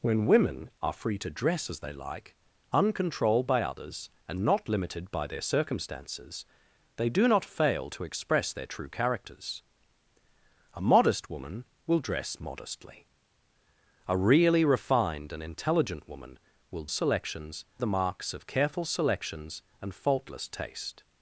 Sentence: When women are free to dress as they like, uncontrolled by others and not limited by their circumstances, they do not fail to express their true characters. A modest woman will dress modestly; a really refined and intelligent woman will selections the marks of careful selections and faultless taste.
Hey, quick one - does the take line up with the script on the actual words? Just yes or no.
yes